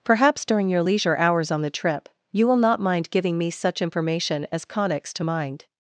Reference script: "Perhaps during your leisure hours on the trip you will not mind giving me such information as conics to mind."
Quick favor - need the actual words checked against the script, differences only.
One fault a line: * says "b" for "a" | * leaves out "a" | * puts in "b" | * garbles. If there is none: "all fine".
all fine